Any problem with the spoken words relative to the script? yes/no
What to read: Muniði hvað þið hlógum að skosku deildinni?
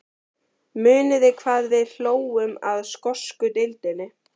yes